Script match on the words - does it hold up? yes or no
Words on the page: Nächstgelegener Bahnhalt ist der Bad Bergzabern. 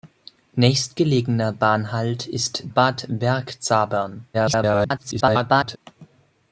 no